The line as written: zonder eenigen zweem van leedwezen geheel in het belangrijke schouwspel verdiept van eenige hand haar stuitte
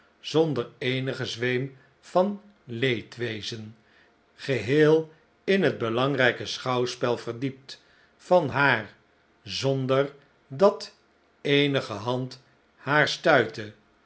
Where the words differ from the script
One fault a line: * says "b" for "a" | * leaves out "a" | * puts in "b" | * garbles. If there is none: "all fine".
* puts in "haar zonder dat"